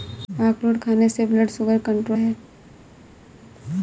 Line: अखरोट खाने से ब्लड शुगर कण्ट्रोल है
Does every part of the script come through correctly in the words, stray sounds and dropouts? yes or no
yes